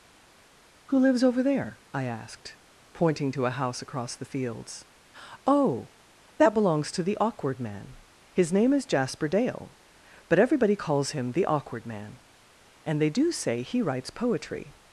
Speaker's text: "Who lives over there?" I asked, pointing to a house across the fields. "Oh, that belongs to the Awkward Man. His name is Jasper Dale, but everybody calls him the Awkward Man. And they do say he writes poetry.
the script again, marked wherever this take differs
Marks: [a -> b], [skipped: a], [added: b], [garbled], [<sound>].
"Who lives over there?" I asked, pointing to a house across the fields. "Oh, that belongs to the Awkward Man. His name is Jasper Dale, but everybody calls him the Awkward Man. And they do say he writes poetry.